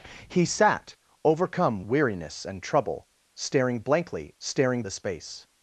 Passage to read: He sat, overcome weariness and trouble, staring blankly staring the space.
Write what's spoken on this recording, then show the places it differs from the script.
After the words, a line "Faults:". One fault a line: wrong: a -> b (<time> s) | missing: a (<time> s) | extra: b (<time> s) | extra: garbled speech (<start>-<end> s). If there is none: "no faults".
He sat, overcome weariness and trouble, staring blankly staring the space.
Faults:
no faults